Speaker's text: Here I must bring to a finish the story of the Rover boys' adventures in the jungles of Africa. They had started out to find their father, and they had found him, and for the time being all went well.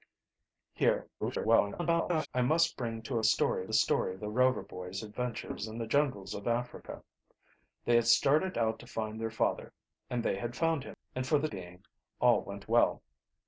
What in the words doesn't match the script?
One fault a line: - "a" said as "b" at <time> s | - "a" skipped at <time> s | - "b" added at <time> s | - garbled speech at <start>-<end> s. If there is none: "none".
- garbled speech at 1.2-2.3 s
- "finish" said as "story" at 3.2 s
- "time" skipped at 11.5 s